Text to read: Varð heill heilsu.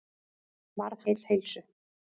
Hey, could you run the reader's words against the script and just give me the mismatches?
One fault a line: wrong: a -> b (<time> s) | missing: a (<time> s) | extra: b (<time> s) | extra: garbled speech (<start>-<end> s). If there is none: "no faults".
no faults